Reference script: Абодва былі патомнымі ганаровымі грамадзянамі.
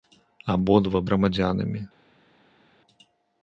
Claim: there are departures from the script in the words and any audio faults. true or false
true